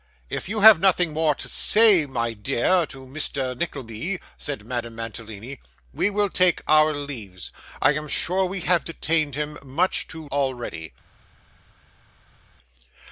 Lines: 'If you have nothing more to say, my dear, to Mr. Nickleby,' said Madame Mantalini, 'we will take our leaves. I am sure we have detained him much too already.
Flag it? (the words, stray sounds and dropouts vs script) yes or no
no